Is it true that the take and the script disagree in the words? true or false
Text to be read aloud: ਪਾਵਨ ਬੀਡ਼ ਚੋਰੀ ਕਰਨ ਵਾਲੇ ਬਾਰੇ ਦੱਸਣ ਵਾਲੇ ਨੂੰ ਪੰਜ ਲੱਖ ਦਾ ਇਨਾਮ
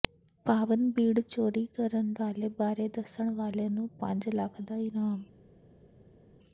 false